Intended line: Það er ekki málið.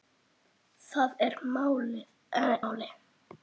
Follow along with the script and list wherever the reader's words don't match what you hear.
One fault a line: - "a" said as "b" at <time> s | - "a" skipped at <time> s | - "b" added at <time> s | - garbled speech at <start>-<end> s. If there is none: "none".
- "ekki" skipped at 1.4 s